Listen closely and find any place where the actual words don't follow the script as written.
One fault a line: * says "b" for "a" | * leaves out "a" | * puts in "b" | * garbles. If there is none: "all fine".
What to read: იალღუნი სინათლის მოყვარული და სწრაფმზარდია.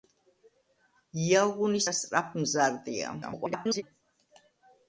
* leaves out "სინათლის მოყვარული"
* garbles